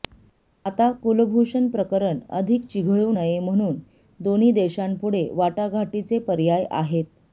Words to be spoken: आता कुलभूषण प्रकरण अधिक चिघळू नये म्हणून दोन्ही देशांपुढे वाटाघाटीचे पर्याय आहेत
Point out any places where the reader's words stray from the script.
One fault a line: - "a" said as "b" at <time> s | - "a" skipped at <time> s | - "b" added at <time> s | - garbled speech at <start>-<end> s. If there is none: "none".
none